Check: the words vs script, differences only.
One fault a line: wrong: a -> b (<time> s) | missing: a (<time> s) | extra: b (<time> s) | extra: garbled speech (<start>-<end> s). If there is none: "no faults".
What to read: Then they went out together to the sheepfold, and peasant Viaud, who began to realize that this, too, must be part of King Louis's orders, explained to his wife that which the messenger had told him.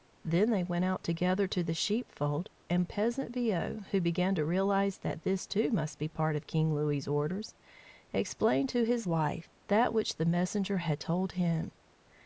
no faults